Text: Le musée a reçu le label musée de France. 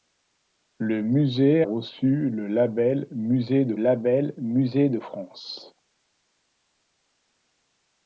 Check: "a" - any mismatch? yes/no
yes